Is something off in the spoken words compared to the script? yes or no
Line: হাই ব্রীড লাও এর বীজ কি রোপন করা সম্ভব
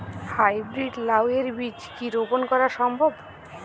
no